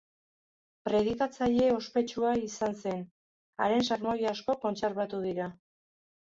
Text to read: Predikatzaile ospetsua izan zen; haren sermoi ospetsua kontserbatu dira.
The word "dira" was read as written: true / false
true